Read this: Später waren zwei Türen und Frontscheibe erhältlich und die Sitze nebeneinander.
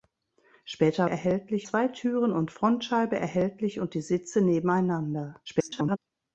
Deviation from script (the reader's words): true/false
true